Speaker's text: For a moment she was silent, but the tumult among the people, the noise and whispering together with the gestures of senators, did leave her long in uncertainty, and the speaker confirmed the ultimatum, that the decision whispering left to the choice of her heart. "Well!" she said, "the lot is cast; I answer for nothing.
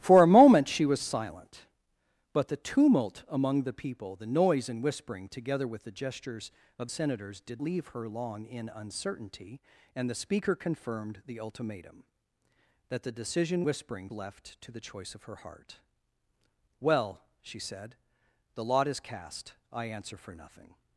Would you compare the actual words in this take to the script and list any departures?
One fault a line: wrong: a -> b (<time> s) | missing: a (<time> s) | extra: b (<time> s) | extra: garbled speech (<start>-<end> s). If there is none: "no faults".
no faults